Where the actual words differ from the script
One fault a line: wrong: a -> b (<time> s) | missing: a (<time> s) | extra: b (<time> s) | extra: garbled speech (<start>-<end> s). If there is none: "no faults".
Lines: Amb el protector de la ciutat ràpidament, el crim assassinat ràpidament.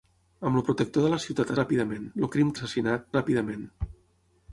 no faults